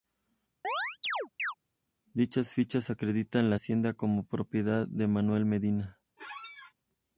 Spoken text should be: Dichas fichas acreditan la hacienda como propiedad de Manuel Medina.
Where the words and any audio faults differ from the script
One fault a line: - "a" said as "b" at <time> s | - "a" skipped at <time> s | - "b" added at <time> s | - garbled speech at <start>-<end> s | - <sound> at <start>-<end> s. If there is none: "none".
- chirp at 0.6-1.5 s
- squeak at 6.2-6.7 s